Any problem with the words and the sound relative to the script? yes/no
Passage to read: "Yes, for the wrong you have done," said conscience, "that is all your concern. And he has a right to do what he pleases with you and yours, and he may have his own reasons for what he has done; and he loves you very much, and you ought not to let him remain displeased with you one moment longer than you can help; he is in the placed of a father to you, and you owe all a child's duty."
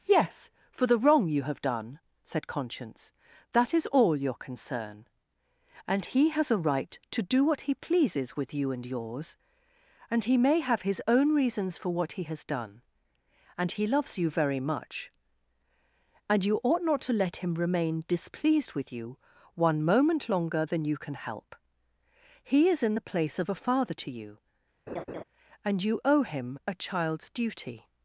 yes